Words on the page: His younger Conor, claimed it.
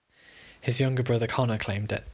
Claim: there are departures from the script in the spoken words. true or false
true